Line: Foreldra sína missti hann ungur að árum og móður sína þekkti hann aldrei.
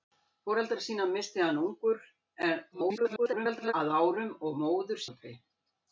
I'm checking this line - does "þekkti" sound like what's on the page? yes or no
no